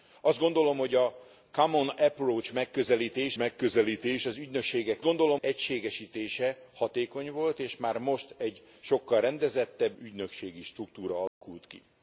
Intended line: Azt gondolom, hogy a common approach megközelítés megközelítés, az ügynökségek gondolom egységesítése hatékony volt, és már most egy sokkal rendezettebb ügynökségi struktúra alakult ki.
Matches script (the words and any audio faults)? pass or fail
fail